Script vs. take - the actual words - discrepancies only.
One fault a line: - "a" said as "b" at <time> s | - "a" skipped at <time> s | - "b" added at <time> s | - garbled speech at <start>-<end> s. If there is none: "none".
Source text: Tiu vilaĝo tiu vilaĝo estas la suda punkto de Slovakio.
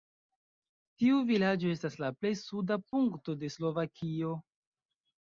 - "tiu vilaĝo" skipped at 1.7 s
- "plej" added at 2.2 s